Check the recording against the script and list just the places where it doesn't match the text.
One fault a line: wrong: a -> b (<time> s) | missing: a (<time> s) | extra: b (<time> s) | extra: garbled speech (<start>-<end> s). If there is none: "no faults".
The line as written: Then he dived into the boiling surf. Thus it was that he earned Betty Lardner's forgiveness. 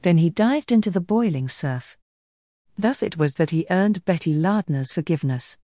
no faults